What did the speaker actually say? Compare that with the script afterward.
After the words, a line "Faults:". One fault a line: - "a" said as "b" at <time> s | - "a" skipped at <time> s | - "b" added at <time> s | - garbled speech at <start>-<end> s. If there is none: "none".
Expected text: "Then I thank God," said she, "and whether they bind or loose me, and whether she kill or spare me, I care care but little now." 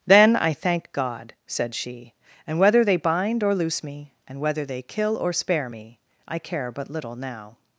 "Then I thank God," said she, "and whether they bind or loose me, and whether they kill or spare me, I care but little now."
Faults:
- "she" said as "they" at 4.7 s
- "care" skipped at 6.7 s